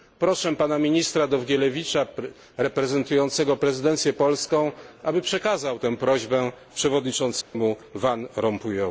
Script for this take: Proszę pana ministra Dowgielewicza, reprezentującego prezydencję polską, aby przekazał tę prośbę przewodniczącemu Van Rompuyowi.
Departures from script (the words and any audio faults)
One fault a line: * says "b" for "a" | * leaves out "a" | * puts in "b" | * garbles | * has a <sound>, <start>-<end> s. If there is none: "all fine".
* has a dropout, 7.4-7.5 s